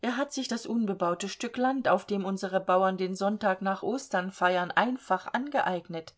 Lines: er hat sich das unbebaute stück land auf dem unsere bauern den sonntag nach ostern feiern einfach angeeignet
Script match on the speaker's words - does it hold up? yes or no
yes